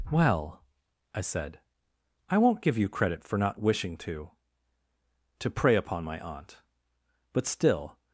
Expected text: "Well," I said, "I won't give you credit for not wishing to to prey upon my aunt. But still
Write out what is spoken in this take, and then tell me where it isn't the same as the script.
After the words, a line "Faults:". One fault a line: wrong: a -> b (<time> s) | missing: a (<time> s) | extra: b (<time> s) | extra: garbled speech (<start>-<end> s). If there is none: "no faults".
"Well," I said, "I won't give you credit for not wishing to to prey upon my aunt. But still
Faults:
no faults